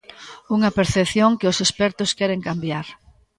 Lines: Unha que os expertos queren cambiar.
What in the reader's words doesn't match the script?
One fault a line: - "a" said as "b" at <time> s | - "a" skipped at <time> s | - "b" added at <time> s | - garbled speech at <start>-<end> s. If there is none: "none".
- "percepción" added at 0.8 s